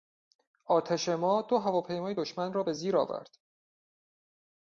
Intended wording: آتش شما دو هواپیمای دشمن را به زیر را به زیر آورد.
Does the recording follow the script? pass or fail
fail